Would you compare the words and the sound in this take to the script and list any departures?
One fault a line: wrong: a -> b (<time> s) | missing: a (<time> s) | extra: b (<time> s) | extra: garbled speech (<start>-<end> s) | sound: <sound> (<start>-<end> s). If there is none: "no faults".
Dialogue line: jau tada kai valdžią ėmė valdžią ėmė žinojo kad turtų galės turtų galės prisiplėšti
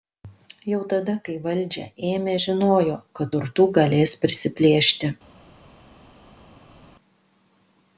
missing: valdžią ėmė (2.4 s)
missing: turtų galės (4.2 s)